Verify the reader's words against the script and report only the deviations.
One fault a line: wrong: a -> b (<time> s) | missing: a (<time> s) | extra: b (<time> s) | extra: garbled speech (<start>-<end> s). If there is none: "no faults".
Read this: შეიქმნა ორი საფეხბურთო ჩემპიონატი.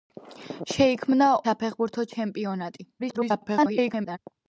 missing: ორი (1.3 s)
extra: garbled speech (3.0-4.2 s)